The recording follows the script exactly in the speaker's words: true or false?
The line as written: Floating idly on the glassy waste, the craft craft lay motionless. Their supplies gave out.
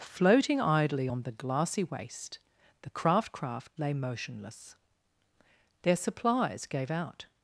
true